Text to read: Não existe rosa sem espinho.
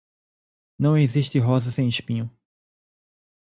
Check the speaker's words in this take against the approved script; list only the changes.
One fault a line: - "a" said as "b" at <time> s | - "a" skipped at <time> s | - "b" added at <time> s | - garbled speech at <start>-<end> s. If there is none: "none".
none